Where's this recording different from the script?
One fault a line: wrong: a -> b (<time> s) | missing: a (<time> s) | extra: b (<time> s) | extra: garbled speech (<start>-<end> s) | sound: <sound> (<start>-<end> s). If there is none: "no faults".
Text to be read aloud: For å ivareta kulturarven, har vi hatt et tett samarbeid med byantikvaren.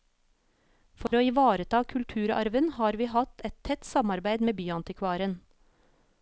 sound: dropout (1.1-1.1 s)